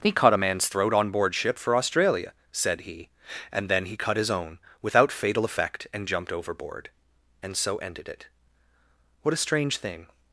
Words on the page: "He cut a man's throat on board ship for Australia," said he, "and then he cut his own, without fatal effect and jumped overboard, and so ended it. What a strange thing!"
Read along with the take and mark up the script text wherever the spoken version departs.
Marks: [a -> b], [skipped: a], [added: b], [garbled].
"He cut a man's throat on board ship for Australia," said he, "and then he cut his own, without fatal effect and jumped overboard, and so ended it. What a strange thing!"